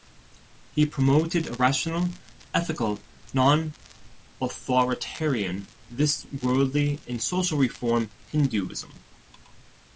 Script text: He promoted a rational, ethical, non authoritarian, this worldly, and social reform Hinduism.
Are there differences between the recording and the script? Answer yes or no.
no